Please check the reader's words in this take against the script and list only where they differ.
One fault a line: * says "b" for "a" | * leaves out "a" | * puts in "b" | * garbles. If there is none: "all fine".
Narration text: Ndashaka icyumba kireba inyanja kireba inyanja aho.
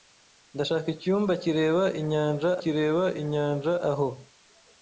all fine